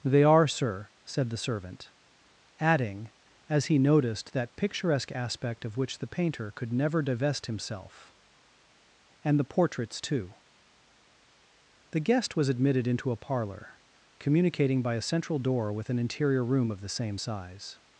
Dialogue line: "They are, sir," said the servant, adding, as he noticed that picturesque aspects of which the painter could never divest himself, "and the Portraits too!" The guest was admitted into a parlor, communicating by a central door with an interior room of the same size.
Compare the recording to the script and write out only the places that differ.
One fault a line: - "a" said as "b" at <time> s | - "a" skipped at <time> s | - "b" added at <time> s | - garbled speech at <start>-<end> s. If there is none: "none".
- "aspects" said as "aspect" at 5.1 s